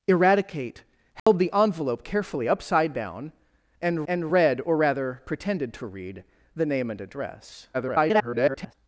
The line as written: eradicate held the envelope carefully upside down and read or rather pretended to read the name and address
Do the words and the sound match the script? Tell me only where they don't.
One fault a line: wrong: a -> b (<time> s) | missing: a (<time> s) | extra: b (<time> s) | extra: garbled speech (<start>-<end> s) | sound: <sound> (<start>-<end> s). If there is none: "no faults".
sound: dropout (1.2-1.3 s)
extra: and (4.1 s)
extra: garbled speech (7.7-8.7 s)